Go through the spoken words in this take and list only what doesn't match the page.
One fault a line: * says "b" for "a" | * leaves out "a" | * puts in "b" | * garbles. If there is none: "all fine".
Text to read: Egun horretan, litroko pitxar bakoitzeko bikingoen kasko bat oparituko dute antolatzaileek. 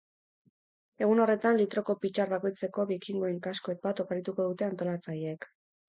all fine